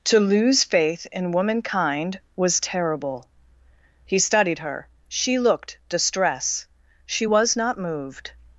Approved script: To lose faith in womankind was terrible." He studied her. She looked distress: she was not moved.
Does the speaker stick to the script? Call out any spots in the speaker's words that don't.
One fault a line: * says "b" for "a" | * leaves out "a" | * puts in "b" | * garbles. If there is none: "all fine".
all fine